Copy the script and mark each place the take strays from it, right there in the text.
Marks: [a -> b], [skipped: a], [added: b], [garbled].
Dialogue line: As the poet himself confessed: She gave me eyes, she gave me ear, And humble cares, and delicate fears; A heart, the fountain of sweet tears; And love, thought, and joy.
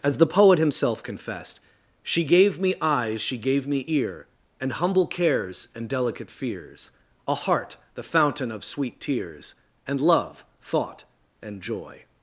As the poet himself confessed: She gave me eyes, she gave me ear, And humble cares, and delicate fears; A heart, the fountain of sweet tears; And love, thought, and joy.